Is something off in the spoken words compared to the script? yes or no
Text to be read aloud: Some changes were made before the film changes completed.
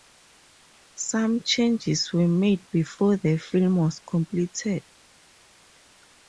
yes